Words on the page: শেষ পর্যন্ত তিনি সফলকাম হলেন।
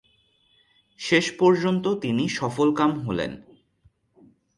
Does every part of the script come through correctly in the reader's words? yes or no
yes